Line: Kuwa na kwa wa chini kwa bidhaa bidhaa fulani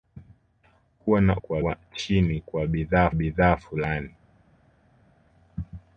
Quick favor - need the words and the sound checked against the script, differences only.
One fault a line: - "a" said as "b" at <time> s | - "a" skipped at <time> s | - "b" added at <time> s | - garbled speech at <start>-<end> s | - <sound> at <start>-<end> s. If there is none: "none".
none